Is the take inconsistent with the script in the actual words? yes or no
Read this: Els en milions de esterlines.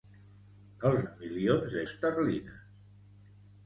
no